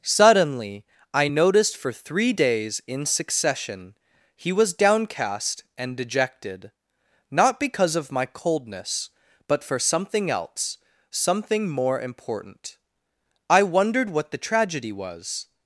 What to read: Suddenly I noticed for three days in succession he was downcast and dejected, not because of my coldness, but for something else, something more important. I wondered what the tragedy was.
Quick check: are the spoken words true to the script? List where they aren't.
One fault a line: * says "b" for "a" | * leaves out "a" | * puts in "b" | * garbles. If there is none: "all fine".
all fine